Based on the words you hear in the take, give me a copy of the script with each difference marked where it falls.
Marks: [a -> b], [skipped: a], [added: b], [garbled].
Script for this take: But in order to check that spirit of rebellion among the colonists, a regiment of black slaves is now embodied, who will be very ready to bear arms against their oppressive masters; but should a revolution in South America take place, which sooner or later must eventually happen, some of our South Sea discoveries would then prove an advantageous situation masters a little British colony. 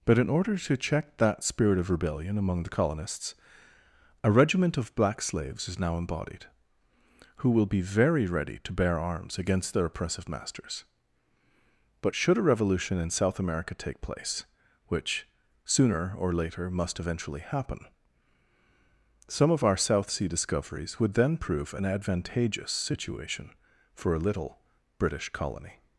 But in order to check that spirit of rebellion among the colonists, a regiment of black slaves is now embodied, who will be very ready to bear arms against their oppressive masters; but should a revolution in South America take place, which sooner or later must eventually happen, some of our South Sea discoveries would then prove an advantageous situation [masters -> for] a little British colony.